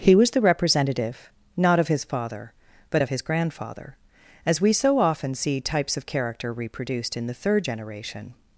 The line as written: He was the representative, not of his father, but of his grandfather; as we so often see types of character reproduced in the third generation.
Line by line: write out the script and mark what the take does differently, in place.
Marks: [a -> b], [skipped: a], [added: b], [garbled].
He was the representative, not of his father, but of his grandfather; as we so often see types of character reproduced in the third generation.